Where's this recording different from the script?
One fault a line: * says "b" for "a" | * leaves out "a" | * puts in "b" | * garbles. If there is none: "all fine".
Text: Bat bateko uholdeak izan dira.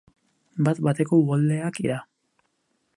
* leaves out "izan"